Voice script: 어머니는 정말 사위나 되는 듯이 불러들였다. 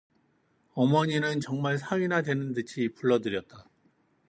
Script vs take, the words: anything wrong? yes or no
no